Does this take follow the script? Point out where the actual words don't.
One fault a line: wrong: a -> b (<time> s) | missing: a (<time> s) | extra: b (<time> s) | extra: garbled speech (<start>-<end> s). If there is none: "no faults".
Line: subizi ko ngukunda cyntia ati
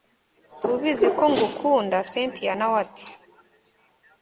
extra: nawe (2.6 s)